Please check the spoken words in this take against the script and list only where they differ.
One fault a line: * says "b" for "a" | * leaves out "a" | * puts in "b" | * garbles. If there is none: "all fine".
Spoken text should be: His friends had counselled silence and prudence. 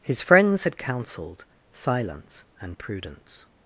all fine